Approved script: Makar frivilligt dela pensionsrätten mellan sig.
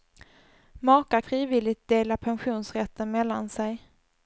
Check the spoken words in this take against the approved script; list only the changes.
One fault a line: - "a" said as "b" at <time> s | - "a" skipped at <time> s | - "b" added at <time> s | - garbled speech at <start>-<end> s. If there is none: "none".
none